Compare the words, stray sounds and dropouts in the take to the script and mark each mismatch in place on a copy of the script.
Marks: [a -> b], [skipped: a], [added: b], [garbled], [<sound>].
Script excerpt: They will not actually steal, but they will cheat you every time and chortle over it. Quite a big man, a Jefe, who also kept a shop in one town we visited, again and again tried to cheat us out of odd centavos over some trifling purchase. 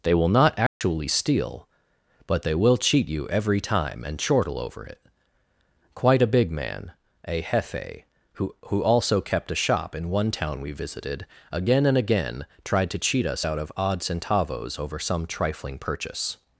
They will not actually [dropout] steal, but they will cheat you every time and chortle over it. Quite a big man, a Jefe, who [added: who] also kept a shop in one town we visited, again and again tried to cheat us out of odd centavos over some trifling purchase.